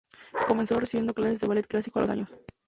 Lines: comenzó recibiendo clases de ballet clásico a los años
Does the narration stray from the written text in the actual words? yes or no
no